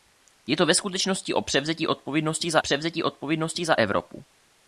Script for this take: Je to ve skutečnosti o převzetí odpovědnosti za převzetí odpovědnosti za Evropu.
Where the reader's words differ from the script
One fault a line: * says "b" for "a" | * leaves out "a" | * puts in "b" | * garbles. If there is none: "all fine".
all fine